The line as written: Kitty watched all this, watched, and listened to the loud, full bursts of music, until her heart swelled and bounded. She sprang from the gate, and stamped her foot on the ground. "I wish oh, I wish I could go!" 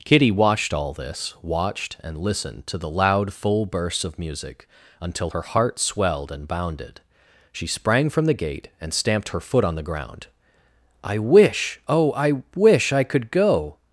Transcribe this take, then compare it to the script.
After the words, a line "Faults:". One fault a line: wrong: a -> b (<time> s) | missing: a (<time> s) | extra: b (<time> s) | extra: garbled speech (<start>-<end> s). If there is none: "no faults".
Kitty watched all this, watched, and listened to the loud, full bursts of music, until her heart swelled and bounded. She sprang from the gate, and stamped her foot on the ground. "I wish oh, I wish I could go!"
Faults:
no faults